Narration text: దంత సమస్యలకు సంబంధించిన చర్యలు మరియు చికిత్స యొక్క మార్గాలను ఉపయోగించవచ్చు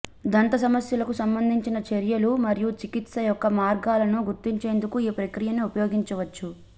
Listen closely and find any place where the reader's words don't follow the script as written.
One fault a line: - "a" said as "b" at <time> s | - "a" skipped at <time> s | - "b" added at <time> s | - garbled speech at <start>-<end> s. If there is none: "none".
- "గుర్తించేందుకు ఈ ప్రక్రియను" added at 4.3 s